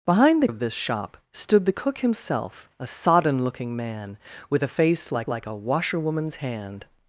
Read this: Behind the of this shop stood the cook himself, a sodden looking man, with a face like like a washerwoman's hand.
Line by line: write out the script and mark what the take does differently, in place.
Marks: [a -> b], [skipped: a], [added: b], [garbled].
Behind the of this shop stood the cook himself, a sodden looking man, with a face like like a washerwoman's hand.